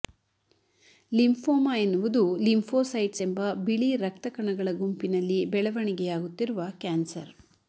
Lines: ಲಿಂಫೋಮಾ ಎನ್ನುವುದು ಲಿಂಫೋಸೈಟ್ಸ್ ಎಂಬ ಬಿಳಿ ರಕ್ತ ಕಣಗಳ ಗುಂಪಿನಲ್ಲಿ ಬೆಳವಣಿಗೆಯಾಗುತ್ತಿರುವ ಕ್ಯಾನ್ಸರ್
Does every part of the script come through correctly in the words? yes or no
yes